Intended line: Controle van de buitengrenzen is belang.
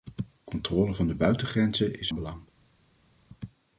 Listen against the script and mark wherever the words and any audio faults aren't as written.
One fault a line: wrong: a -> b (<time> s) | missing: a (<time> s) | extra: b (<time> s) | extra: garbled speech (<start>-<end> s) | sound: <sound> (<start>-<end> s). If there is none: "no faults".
no faults